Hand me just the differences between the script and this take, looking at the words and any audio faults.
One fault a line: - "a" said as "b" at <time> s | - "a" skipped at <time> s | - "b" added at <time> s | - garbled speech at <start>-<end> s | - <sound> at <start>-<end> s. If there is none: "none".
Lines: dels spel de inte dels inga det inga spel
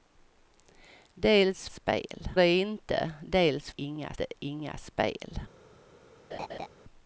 - laugh at 6.3-6.7 s